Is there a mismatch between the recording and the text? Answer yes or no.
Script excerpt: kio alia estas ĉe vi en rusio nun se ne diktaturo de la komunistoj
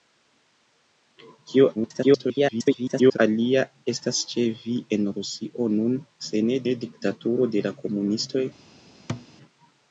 yes